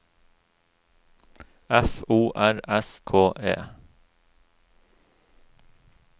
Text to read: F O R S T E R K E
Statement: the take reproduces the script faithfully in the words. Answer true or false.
false